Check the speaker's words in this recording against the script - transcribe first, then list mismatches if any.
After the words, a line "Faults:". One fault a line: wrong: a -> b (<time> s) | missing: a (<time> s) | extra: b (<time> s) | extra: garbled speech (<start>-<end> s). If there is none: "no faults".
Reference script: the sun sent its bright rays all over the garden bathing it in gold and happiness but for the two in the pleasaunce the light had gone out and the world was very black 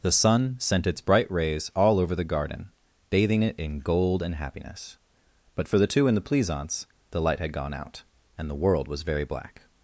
the sun sent its bright rays all over the garden bathing it in gold and happiness but for the two in the pleasaunce the light had gone out and the world was very black
Faults:
no faults